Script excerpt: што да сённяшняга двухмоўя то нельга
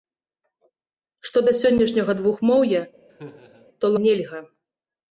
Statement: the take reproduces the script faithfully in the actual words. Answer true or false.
true